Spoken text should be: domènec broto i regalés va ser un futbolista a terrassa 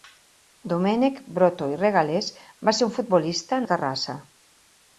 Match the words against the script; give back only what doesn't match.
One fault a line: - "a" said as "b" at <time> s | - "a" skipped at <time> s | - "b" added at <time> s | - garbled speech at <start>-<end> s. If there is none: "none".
none